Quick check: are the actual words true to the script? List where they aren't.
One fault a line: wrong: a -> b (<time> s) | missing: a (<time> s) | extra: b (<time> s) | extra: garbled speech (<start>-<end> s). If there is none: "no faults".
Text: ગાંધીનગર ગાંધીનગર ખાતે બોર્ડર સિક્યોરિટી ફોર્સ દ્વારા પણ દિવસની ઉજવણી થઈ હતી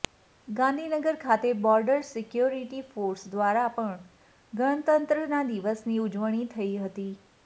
missing: ગાંધીનગર (1.2 s)
extra: ગણતંત્રતા (4.5 s)